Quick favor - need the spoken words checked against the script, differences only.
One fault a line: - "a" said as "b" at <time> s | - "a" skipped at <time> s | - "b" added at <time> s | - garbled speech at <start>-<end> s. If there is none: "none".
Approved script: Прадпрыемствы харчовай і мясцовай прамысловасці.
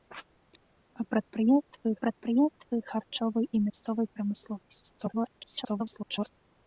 - "прадпрыемствы" added at 2.0 s
- garbled speech at 5.0-6.3 s